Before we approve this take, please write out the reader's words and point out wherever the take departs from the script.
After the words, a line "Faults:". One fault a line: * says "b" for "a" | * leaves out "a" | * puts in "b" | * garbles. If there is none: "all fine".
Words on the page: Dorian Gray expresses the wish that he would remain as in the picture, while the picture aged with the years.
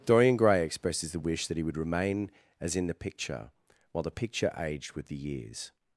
Dorian Gray expresses the wish that he would remain as in the picture, while the picture aged with the years.
Faults:
all fine